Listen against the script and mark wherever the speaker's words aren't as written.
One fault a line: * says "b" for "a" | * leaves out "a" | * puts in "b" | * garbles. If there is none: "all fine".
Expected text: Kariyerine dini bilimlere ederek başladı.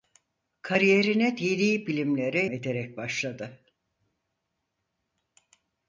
all fine